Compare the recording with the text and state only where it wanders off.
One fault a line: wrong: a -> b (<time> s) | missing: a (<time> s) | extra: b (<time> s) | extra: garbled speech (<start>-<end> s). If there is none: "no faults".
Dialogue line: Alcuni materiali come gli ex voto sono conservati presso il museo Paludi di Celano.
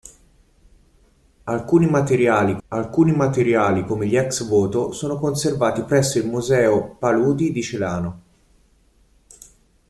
extra: alcuni materiali (2.7 s)